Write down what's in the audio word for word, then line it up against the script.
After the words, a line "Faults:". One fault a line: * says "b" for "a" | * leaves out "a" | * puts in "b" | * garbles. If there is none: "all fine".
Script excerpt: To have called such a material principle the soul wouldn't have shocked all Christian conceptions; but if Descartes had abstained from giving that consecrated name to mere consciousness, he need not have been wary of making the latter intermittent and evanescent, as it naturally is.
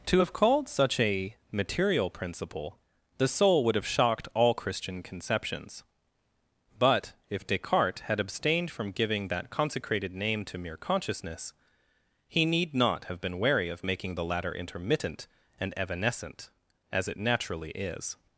To have called such a material principle the soul would have shocked all Christian conceptions; but if Descartes had abstained from giving that consecrated name to mere consciousness, he need not have been wary of making the latter intermittent and evanescent, as it naturally is.
Faults:
* says "would" for "wouldn't"